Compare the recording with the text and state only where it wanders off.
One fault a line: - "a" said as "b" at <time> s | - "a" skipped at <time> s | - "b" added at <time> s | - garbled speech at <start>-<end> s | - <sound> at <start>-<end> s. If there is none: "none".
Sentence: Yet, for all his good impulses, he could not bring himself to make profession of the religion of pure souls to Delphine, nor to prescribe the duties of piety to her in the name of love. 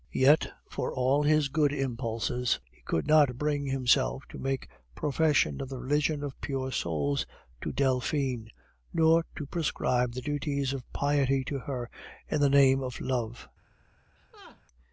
- laugh at 14.2-14.6 s